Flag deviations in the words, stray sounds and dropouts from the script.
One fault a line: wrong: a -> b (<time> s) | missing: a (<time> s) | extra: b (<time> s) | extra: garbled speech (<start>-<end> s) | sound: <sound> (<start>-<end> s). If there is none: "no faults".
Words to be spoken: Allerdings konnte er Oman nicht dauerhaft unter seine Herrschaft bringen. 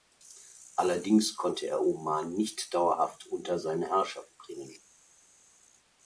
no faults